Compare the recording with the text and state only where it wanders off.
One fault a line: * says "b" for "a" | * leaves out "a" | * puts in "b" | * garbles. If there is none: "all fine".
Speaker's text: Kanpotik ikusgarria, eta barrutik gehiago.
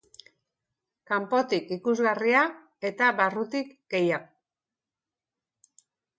all fine